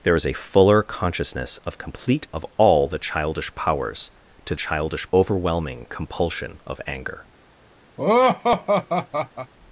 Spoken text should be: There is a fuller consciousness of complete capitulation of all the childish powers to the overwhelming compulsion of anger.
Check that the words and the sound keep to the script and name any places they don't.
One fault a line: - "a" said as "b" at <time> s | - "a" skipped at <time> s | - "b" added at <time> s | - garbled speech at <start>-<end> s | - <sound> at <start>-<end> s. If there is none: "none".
- "capitulation" skipped at 2.3 s
- "the" said as "childish" at 4.5 s
- laugh at 8.0-9.5 s